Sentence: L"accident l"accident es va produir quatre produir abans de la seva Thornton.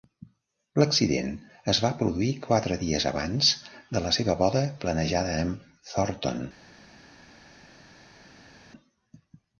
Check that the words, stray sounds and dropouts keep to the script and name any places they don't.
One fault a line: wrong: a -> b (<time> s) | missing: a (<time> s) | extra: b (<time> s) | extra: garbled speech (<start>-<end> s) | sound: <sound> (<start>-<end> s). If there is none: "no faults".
missing: l"accident (1.3 s)
wrong: produir -> dies (2.9 s)
extra: boda planejada amb (4.4 s)